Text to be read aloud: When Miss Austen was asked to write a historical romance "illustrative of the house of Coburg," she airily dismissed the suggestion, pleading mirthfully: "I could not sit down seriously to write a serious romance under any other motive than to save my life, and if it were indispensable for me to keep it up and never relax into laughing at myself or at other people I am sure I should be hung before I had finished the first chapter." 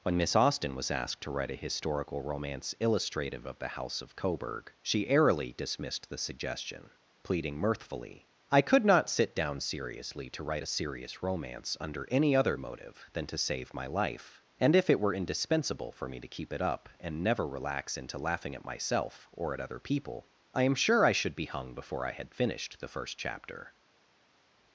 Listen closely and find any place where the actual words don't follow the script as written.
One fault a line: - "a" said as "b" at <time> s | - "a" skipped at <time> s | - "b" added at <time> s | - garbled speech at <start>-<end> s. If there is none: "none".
none